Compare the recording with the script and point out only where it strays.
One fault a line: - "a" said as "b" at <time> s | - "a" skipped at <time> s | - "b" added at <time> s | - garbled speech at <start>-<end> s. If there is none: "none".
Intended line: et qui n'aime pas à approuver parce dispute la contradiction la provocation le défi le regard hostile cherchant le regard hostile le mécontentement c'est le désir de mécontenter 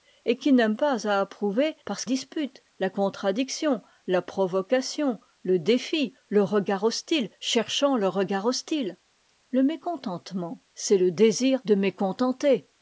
none